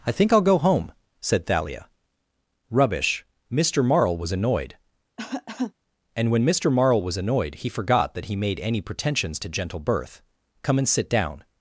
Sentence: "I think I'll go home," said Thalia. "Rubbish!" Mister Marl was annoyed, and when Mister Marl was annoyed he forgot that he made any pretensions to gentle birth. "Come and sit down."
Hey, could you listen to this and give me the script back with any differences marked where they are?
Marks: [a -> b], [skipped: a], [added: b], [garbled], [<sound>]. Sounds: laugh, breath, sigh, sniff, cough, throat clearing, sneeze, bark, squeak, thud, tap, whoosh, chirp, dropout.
"I think I'll go home," said Thalia. "Rubbish!" Mister Marl was annoyed, [cough] and when Mister Marl was annoyed he forgot that he made any pretensions to gentle birth. "Come and sit down."